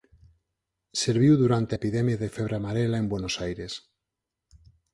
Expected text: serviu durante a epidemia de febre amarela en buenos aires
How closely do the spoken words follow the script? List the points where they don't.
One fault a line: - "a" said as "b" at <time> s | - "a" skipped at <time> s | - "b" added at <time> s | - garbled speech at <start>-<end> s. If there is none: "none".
- "a" skipped at 1.8 s